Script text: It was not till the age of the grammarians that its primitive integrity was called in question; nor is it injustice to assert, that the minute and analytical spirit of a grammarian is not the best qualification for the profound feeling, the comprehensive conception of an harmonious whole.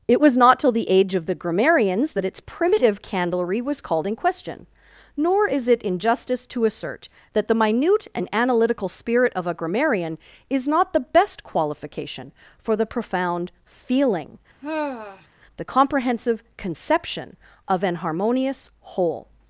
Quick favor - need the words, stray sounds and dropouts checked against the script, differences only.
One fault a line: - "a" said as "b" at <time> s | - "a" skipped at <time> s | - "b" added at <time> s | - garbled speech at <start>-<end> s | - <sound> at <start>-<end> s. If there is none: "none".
- "integrity" said as "candlery" at 3.0 s
- sigh at 14.6-15.3 s